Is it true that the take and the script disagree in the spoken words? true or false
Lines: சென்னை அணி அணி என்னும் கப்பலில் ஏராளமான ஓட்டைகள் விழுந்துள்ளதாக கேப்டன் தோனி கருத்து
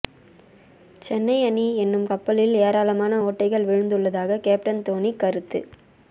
true